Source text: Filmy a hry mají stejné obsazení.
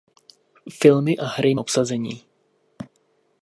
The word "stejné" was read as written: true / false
false